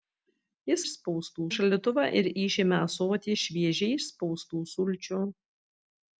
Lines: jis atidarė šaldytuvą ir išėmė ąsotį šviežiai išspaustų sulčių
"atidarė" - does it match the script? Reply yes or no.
no